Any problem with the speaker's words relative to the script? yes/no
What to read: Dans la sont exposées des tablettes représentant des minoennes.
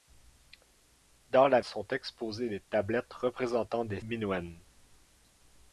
no